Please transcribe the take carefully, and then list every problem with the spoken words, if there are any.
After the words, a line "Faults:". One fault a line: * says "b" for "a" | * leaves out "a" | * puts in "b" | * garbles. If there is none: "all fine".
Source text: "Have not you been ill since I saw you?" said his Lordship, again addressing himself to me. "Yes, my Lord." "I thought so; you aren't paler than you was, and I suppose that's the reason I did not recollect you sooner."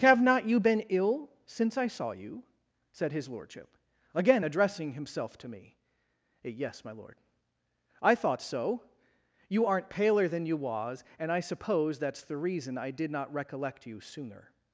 "Have not you been ill since I saw you?" said his Lordship, again addressing himself to me. "Yes, my Lord." "I thought so; you aren't paler than you was, and I suppose that's the reason I did not recollect you sooner."
Faults:
all fine